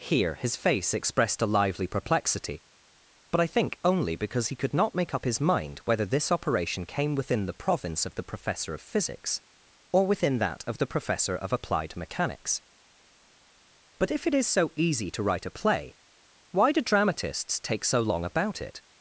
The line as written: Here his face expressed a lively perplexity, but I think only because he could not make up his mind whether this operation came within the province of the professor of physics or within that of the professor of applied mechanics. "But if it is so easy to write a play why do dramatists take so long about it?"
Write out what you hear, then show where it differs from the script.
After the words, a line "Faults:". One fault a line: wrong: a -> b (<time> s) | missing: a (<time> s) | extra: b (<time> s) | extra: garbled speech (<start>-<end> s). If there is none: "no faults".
Here his face expressed a lively perplexity, but I think only because he could not make up his mind whether this operation came within the province of the professor of physics or within that of the professor of applied mechanics. "But if it is so easy to write a play why do dramatists take so long about it?"
Faults:
no faults